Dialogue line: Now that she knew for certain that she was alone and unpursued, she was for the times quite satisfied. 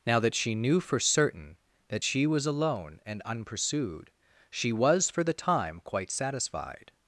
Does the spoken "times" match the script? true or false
false